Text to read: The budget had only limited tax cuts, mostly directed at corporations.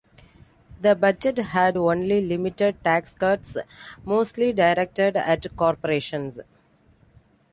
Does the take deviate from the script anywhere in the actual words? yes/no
no